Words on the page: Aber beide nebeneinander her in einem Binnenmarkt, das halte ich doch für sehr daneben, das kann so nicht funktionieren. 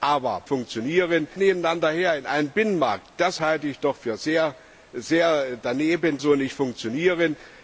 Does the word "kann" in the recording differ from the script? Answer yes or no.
yes